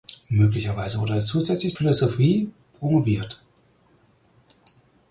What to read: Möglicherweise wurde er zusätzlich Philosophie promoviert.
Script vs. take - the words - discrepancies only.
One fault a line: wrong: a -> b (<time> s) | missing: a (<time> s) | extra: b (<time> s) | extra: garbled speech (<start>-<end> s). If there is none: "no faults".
no faults